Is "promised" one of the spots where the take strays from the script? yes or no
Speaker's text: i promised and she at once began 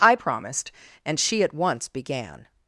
no